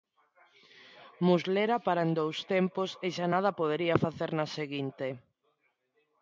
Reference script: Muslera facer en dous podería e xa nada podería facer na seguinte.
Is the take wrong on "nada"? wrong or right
right